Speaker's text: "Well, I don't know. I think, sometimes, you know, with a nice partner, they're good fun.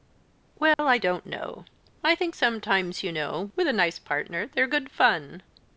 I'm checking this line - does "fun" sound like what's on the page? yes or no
yes